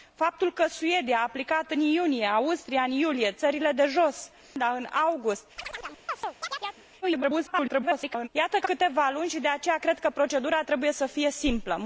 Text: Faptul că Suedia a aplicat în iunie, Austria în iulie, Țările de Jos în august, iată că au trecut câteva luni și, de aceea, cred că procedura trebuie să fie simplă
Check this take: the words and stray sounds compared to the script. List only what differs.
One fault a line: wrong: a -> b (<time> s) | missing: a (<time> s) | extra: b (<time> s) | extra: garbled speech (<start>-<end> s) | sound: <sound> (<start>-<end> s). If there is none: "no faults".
sound: chirp (5.6-6.8 s)
extra: garbled speech (7.0-8.3 s)
missing: au trecut (8.7 s)